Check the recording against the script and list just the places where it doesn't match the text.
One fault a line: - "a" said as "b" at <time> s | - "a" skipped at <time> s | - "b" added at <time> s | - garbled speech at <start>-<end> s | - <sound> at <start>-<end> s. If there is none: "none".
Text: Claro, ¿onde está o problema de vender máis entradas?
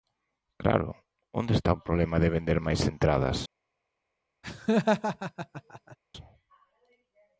- laugh at 4.4-6.0 s